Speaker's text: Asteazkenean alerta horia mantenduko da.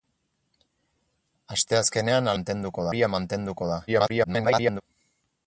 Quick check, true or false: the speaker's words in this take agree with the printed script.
false